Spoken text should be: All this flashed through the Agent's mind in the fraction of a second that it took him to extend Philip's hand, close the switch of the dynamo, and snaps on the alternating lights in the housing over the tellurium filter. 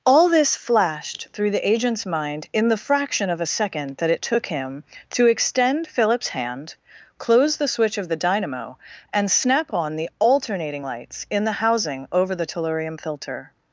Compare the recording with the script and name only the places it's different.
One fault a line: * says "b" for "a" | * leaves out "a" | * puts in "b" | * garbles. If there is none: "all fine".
* says "snap" for "snaps"